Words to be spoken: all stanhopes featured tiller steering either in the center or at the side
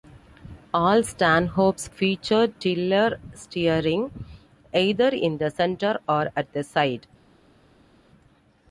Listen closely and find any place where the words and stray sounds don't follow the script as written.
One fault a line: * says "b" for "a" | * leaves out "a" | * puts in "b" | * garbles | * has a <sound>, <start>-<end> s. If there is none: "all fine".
all fine